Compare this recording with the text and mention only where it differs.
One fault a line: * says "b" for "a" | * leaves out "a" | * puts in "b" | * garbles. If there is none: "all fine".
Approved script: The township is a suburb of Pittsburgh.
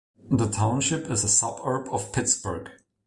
all fine